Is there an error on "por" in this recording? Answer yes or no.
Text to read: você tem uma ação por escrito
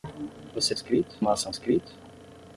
yes